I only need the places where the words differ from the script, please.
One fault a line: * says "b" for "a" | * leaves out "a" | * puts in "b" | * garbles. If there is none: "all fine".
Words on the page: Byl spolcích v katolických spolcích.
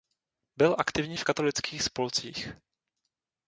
* says "aktivní" for "spolcích"